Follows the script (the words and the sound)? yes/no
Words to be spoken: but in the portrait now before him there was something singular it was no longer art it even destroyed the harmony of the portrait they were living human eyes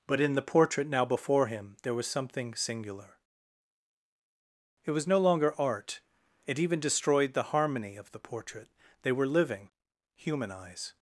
yes